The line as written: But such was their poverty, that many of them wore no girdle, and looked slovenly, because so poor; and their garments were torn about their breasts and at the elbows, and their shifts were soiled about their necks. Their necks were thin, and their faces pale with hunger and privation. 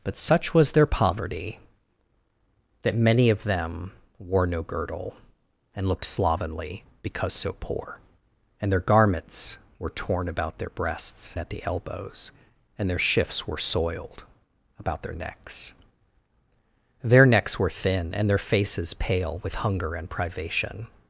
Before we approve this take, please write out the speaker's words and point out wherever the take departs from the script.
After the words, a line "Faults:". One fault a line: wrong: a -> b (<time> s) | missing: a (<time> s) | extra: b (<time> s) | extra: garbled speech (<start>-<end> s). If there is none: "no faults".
But such was their poverty, that many of them wore no girdle, and looked slovenly, because so poor; and their garments were torn about their breasts at the elbows, and their shifts were soiled about their necks. Their necks were thin, and their faces pale with hunger and privation.
Faults:
missing: and (11.4 s)